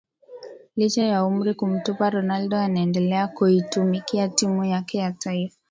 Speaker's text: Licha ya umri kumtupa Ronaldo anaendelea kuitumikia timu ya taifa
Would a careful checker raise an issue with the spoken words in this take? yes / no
yes